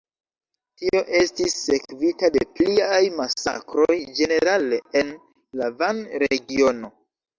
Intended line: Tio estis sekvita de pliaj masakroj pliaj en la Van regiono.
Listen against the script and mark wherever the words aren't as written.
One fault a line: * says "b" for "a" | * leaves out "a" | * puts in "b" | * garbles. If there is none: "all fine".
* says "ĝenerale" for "pliaj"